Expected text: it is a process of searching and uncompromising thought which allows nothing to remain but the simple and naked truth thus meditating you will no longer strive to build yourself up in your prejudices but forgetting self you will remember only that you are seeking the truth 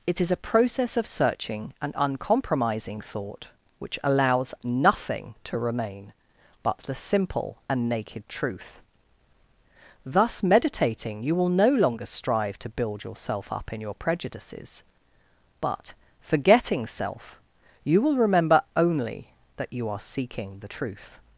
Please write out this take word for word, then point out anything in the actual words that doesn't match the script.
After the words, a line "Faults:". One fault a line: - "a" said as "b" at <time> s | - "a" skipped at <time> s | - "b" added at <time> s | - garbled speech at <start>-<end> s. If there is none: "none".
it is a process of searching and uncompromising thought which allows nothing to remain but the simple and naked truth thus meditating you will no longer strive to build yourself up in your prejudices but forgetting self you will remember only that you are seeking the truth
Faults:
none